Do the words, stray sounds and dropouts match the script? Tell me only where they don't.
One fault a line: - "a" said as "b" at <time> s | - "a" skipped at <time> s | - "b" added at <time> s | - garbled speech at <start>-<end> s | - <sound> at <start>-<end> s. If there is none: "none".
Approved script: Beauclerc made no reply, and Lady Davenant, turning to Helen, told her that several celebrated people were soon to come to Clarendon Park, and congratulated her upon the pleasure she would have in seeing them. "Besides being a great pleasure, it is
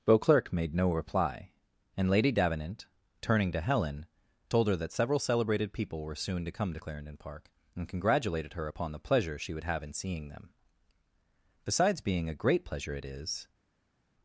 none